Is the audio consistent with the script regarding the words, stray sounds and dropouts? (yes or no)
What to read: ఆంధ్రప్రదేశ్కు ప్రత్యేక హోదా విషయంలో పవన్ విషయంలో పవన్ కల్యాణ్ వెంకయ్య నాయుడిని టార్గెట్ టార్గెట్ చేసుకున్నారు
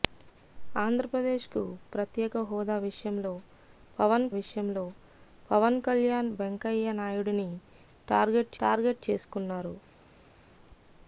yes